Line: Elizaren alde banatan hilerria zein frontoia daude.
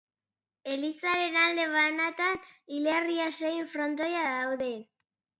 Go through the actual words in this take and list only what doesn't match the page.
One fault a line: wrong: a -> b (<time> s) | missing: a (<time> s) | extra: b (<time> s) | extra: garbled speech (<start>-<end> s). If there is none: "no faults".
no faults